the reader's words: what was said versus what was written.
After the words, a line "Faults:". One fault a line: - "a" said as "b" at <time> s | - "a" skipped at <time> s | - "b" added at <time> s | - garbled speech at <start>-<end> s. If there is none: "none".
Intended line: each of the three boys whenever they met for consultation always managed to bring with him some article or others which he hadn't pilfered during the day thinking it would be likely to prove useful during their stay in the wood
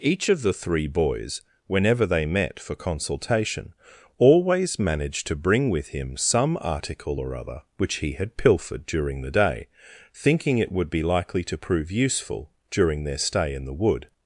each of the three boys whenever they met for consultation always managed to bring with him some article or other which he had pilfered during the day thinking it would be likely to prove useful during their stay in the wood
Faults:
- "others" said as "other" at 7.3 s
- "hadn't" said as "had" at 8.1 s